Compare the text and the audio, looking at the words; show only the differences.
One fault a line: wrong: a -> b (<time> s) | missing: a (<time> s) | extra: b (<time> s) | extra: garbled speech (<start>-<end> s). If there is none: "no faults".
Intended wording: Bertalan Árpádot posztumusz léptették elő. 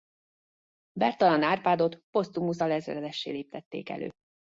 extra: alezredessé (2.6 s)